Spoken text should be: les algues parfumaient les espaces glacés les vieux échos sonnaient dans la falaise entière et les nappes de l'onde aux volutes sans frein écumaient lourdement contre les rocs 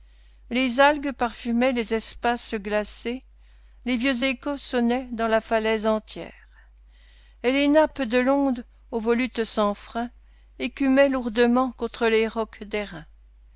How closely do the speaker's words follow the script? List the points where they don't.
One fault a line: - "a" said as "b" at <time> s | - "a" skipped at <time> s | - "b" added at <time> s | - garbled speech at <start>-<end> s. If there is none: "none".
none